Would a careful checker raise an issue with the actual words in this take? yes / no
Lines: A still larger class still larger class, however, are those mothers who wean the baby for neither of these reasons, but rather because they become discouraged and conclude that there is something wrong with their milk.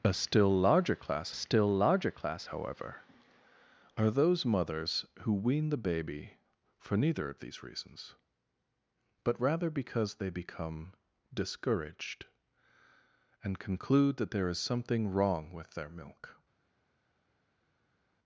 no